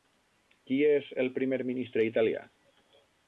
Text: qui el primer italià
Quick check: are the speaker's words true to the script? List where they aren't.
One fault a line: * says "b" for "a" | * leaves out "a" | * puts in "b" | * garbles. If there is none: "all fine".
* puts in "és"
* puts in "ministre"